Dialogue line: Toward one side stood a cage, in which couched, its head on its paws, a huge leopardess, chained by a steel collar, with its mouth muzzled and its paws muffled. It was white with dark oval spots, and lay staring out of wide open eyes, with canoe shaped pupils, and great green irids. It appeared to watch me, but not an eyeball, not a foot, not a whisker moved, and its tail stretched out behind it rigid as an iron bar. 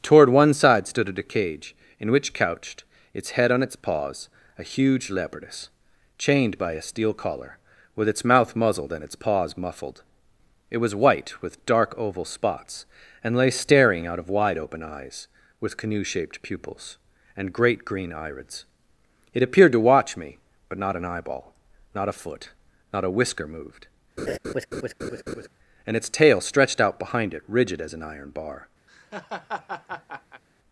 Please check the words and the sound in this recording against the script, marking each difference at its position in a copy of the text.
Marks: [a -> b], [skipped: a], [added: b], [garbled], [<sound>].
Toward one side stood a cage, in which couched, its head on its paws, a huge leopardess, chained by a steel collar, with its mouth muzzled and its paws muffled. It was white with dark oval spots, and lay staring out of wide open eyes, with canoe shaped pupils, and great green irids. It appeared to watch me, but not an eyeball, not a foot, not a whisker moved, [laugh] and its tail stretched out behind it rigid as an iron bar. [laugh]